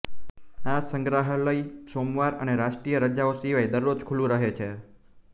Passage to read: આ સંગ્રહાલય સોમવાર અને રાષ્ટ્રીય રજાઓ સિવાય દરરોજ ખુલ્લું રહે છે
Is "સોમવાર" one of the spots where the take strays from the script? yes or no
no